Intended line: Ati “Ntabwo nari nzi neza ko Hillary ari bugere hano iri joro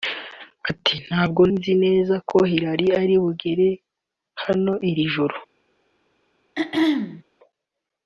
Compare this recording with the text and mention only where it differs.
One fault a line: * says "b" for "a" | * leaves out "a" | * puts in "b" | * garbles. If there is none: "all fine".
* leaves out "nari"